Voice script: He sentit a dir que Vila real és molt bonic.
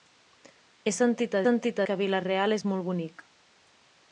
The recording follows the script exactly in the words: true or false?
false